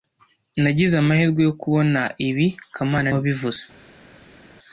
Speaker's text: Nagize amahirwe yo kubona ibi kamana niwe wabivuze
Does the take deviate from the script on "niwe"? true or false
true